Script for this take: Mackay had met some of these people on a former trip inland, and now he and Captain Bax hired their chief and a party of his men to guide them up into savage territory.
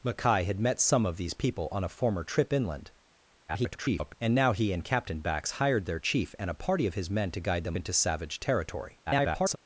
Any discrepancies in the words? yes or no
yes